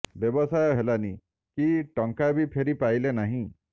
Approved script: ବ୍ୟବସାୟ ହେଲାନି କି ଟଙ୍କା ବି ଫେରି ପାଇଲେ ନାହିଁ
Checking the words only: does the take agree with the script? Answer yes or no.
yes